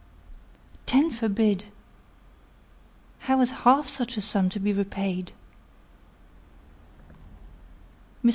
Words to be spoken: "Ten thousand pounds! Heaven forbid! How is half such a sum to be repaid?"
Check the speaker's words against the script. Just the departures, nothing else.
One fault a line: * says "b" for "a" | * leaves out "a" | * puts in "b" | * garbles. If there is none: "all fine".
* leaves out "thousand pounds Heaven"